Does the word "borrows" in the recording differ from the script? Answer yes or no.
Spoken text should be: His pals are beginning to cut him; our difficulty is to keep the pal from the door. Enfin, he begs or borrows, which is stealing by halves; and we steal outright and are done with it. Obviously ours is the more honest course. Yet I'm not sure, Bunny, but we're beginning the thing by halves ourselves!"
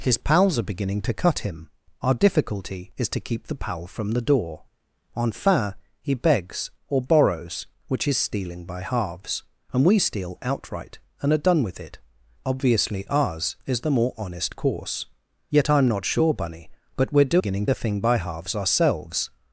no